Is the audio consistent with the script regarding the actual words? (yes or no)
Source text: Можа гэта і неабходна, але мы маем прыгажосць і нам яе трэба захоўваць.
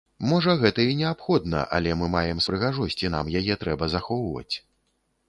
yes